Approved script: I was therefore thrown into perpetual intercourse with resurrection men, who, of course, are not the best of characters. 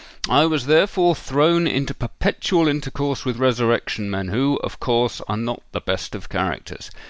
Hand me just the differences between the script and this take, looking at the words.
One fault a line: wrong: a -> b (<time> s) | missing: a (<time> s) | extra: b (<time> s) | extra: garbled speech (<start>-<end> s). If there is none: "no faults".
no faults